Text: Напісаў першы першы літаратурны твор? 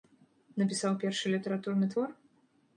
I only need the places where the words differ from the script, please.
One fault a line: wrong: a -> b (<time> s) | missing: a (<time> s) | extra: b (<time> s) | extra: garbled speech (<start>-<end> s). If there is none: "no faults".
missing: першы (1.4 s)